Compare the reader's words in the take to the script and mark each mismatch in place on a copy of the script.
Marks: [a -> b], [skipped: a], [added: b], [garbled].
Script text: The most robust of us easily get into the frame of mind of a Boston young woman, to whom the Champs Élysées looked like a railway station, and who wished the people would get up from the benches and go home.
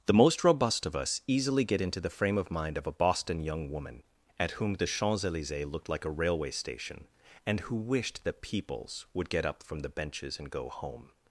The most robust of us easily get into the frame of mind of a Boston young woman, [to -> at] whom the Champs Élysées looked like a railway station, and who wished the [people -> peoples] would get up from the benches and go home.